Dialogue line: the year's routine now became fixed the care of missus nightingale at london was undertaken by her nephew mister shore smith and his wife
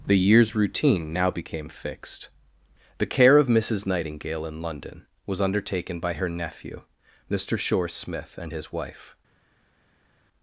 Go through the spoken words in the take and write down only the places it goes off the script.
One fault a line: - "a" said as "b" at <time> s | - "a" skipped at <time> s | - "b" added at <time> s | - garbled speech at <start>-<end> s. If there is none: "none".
- "at" said as "in" at 4.5 s